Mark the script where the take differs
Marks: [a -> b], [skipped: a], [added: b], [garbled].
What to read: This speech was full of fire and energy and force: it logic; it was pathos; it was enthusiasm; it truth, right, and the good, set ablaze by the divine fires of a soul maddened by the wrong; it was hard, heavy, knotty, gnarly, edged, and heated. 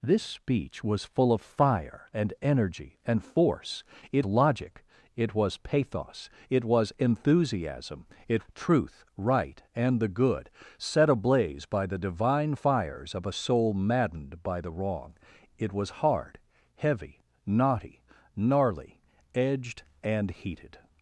This speech was full of fire and energy and force: it logic; it was pathos; it was enthusiasm; it truth, right, and the good, set ablaze by the divine fires of a soul maddened by the wrong; it was hard, heavy, knotty, gnarly, edged, and heated.